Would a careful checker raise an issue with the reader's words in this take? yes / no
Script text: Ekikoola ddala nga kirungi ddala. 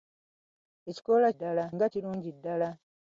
no